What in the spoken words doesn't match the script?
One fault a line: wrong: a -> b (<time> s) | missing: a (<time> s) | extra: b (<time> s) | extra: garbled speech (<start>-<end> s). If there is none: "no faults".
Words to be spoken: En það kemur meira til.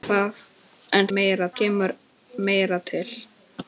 wrong: það -> meira (1.2 s)